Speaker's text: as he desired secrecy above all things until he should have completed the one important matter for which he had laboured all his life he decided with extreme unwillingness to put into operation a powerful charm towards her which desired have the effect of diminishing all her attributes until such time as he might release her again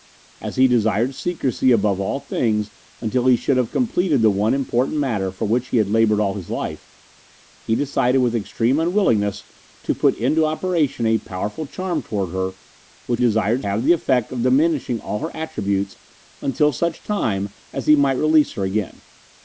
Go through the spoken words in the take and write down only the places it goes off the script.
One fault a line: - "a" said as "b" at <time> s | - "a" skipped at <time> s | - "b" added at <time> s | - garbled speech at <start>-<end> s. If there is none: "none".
none